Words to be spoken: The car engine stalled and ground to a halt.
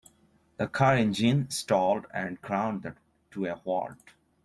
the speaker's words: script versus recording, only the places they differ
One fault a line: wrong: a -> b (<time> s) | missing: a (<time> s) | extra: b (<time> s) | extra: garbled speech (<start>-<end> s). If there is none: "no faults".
no faults